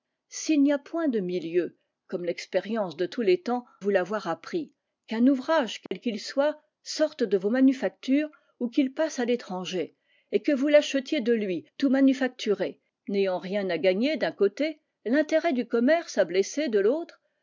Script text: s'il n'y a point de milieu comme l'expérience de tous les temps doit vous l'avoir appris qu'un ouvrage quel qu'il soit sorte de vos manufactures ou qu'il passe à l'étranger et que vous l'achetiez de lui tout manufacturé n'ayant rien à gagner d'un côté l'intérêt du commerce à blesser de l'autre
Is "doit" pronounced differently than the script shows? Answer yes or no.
yes